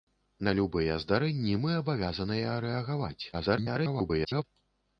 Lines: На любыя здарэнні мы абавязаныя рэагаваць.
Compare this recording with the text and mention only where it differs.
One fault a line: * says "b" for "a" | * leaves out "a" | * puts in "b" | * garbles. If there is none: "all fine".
* garbles